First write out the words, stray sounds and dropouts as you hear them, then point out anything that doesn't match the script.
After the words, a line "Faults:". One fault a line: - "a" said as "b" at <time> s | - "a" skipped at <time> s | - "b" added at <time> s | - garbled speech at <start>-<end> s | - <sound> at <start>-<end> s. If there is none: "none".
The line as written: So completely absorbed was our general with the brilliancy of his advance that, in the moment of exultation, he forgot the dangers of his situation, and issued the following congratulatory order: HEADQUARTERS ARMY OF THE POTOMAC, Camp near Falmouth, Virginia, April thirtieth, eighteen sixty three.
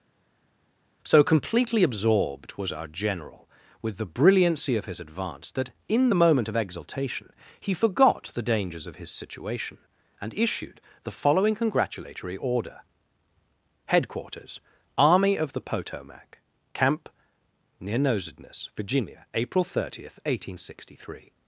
So completely absorbed was our general with the brilliancy of his advance that, in the moment of exultation, he forgot the dangers of his situation, and issued the following congratulatory order: HEADQUARTERS ARMY OF THE POTOMAC, Camp near Nosedness, Virginia, April thirtieth, eighteen sixty three.
Faults:
- "Falmouth" said as "Nosedness" at 18.0 s